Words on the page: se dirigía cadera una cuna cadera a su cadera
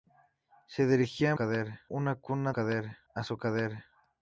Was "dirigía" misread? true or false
false